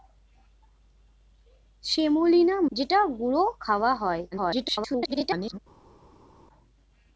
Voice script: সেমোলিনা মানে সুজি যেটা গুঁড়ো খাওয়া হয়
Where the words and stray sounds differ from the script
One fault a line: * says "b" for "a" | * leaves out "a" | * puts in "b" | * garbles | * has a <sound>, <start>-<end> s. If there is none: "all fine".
* leaves out "মানে সুজি"
* garbles